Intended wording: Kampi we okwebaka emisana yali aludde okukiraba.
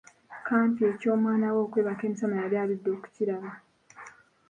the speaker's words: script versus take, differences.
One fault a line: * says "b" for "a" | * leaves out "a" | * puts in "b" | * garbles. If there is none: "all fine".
* puts in "eky'omwana"